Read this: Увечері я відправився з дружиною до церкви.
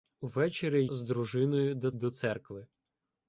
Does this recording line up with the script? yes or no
no